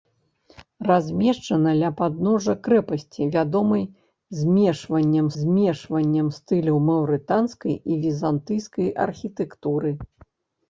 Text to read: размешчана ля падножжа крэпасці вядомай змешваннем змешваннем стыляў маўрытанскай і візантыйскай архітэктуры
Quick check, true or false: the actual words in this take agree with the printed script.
true